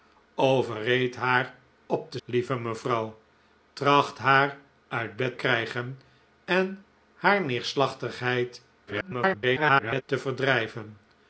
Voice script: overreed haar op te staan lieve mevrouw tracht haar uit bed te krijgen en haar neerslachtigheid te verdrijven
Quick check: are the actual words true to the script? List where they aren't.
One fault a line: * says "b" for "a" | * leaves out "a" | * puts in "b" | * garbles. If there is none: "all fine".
* leaves out "staan"
* leaves out "te"
* garbles